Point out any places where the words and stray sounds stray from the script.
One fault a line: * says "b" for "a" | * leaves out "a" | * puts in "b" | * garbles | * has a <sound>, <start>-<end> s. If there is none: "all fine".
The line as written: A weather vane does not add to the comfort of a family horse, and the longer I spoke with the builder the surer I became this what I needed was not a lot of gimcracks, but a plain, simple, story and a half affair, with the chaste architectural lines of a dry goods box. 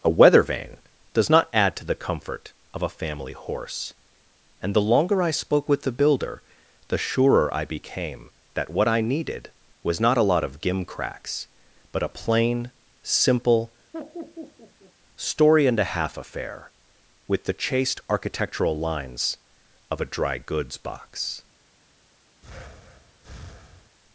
* says "that" for "this"
* has a laugh, 13.9-14.9 s
* has a breath, 22.4-24.0 s